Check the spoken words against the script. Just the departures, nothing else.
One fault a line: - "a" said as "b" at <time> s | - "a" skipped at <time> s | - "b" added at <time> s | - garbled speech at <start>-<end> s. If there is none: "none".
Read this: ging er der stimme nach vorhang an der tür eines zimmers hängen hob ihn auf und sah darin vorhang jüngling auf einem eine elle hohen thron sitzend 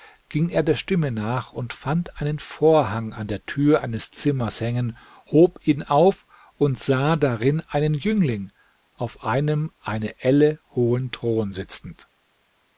- "und fand einen" added at 1.5 s
- "vorhang" said as "einen" at 7.7 s